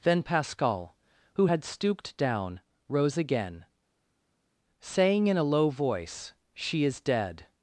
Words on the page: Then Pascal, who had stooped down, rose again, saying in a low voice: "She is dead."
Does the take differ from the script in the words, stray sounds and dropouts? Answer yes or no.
no